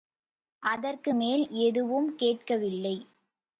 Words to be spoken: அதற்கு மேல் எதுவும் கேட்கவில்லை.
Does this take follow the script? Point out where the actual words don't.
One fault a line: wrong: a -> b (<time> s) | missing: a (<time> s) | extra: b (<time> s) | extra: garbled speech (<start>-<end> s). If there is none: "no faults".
no faults